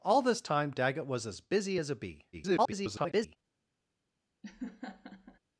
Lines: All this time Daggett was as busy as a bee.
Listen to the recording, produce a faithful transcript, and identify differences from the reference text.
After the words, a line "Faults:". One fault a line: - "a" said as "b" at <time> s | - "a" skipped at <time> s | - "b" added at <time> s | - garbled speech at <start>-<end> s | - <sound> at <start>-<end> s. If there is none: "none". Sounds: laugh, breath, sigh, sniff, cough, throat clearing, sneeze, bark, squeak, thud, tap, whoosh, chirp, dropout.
All this time Daggett was as busy as a bee. [garbled]
Faults:
- garbled speech at 2.3-3.4 s
- laugh at 4.4-5.4 s